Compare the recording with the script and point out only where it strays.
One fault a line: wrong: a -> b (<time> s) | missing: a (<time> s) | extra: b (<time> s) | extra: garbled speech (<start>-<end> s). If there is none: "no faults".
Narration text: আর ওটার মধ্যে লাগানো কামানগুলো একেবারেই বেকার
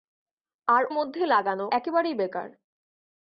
missing: ওটার (0.8 s)
missing: কামানগুলো (1.7 s)